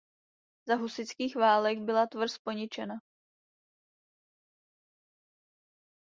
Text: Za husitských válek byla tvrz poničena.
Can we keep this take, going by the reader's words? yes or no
yes